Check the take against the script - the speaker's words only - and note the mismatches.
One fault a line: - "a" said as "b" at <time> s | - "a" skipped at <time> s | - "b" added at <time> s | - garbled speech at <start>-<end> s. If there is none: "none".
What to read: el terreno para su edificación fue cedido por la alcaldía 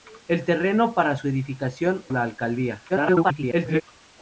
- "fue cedido por" skipped at 2.1 s
- garbled speech at 2.9-3.8 s